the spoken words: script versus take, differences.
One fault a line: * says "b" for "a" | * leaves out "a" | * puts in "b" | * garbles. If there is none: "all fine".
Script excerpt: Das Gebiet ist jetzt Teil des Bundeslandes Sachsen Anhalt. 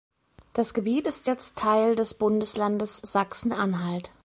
all fine